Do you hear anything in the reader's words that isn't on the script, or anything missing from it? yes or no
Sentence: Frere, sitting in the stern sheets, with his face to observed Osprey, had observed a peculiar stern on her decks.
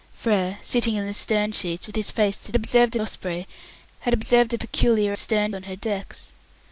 no